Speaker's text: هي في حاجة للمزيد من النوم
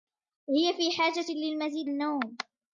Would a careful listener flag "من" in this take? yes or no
yes